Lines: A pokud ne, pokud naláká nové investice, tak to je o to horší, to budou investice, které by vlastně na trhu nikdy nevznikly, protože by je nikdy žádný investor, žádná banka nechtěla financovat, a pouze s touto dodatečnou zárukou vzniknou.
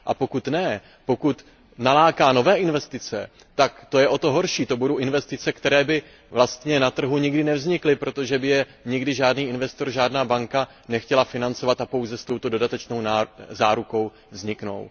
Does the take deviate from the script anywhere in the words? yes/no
no